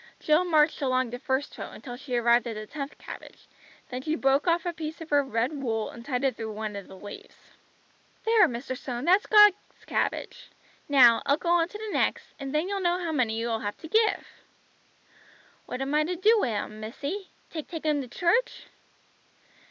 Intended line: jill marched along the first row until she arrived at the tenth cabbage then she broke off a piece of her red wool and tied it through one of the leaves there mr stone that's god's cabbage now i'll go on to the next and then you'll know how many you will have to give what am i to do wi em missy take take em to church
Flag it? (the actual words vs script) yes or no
no